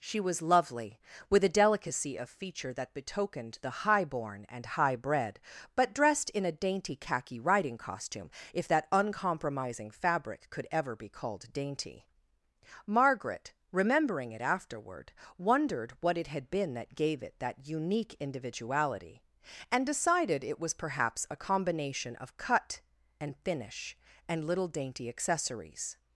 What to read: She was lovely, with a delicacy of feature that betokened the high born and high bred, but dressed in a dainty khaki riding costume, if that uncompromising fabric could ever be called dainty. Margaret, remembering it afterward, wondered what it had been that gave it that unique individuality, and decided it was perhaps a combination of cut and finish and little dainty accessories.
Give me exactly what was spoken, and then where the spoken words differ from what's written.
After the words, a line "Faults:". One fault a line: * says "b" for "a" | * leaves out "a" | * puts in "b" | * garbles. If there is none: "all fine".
She was lovely, with a delicacy of feature that betokened the high born and high bred, but dressed in a dainty khaki riding costume, if that uncompromising fabric could ever be called dainty. Margaret, remembering it afterward, wondered what it had been that gave it that unique individuality, and decided it was perhaps a combination of cut and finish and little dainty accessories.
Faults:
all fine